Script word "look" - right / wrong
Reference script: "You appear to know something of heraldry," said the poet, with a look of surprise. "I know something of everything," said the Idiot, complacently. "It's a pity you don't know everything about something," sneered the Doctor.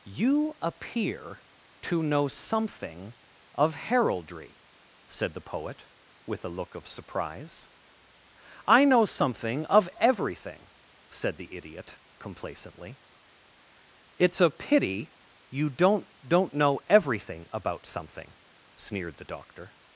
right